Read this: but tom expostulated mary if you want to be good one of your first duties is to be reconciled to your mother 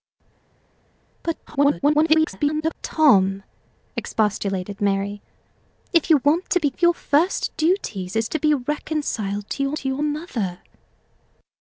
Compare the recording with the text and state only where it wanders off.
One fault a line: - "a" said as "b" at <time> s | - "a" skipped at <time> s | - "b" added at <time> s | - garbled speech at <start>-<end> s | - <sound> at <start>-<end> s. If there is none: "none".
- garbled speech at 1.5-2.8 s
- "good one" skipped at 6.7 s
- "to your" added at 9.8 s